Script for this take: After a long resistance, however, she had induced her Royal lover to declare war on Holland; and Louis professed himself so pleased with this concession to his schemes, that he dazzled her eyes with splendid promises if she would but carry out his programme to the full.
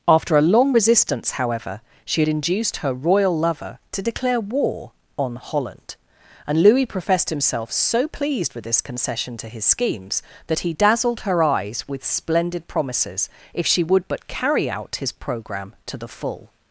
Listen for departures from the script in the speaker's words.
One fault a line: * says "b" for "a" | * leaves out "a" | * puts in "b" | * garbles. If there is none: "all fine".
all fine